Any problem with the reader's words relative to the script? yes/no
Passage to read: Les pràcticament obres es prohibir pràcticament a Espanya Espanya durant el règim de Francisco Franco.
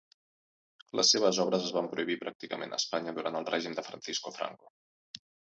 yes